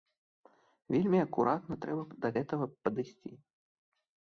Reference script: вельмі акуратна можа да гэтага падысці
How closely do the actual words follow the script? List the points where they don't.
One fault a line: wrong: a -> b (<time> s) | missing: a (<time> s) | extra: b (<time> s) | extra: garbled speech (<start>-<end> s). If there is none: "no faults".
wrong: можа -> трэба (1.9 s)